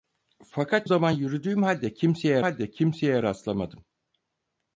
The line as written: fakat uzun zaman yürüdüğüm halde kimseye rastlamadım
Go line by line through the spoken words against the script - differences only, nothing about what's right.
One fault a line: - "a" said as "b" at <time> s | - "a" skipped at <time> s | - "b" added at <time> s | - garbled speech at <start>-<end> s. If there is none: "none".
- "uzun" skipped at 0.9 s
- "halde kimseye" added at 2.4 s